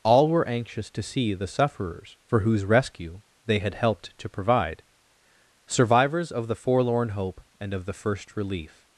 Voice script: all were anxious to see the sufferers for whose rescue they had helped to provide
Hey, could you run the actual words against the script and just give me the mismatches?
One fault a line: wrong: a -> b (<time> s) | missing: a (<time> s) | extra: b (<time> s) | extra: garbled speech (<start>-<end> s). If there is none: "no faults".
extra: survivors of the forlorn hope and of the first relief (5.7 s)